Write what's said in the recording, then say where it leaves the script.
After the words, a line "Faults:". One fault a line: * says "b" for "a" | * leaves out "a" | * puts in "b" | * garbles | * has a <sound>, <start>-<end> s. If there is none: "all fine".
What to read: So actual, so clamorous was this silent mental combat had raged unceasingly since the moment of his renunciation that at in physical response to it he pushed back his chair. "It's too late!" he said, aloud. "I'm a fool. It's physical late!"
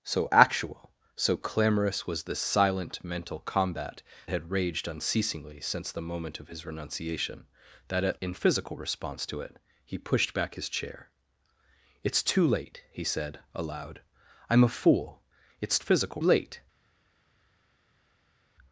So actual, so clamorous was this silent mental combat had raged unceasingly since the moment of his renunciation that at in physical response to it he pushed back his chair. "It's too late!" he said, aloud. "I'm a fool. It's physical late!"
Faults:
all fine